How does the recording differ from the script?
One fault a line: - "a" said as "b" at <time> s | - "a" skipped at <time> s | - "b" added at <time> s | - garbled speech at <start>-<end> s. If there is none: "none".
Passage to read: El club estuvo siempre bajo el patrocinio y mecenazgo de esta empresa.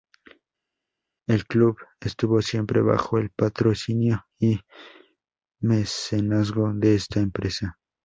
none